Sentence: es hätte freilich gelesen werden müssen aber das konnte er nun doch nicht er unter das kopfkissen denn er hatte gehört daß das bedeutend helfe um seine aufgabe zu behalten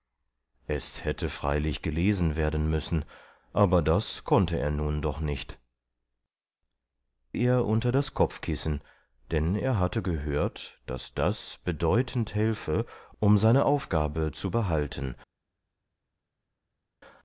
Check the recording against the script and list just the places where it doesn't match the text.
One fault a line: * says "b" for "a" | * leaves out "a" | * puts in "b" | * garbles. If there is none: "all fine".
all fine